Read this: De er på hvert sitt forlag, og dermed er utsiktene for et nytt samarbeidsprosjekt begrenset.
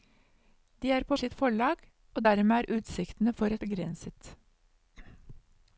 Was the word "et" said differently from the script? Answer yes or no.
yes